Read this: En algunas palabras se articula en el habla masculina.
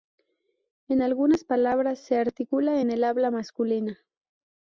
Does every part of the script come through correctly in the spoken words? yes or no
yes